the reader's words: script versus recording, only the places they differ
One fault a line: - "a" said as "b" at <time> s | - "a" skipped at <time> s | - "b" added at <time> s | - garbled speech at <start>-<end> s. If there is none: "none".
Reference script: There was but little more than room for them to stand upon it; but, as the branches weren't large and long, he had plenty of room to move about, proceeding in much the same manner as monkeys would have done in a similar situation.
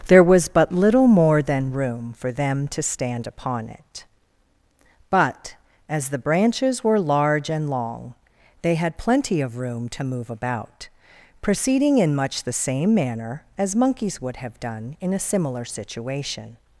- "weren't" said as "were" at 6.8 s
- "he" said as "they" at 8.6 s